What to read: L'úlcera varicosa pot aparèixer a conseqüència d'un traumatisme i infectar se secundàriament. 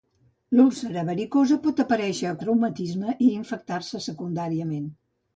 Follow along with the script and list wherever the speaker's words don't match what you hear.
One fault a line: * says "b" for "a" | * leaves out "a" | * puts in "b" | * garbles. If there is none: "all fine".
* leaves out "conseqüència d'un"